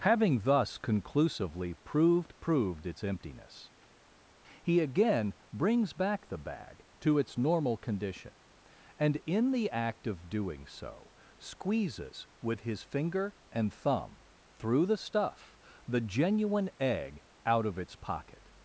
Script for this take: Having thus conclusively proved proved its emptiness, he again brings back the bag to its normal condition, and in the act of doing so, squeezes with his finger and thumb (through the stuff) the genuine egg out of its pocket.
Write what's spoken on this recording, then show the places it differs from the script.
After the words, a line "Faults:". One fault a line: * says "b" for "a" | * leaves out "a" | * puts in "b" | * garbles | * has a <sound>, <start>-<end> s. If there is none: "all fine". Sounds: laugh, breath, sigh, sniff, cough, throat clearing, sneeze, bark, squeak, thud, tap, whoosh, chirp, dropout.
Having thus conclusively proved proved its emptiness, he again brings back the bag to its normal condition, and in the act of doing so, squeezes with his finger and thumb (through the stuff) the genuine egg out of its pocket.
Faults:
all fine